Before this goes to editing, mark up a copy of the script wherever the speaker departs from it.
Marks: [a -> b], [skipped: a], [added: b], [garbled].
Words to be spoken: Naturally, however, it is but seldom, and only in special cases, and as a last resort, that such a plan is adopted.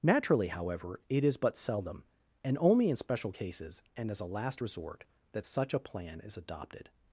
Naturally, however, it is but seldom, and only in special cases, and as a last resort, that such a plan is adopted.